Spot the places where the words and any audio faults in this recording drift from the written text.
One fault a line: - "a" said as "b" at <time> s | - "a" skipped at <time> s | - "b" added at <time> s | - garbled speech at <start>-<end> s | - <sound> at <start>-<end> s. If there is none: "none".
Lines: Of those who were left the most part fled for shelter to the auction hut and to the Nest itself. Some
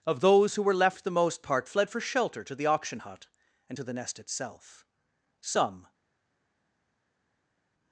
none